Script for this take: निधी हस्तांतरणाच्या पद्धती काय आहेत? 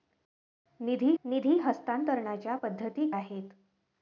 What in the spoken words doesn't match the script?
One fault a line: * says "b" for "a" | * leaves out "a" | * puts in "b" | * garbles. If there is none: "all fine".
* puts in "निधी"
* leaves out "काय"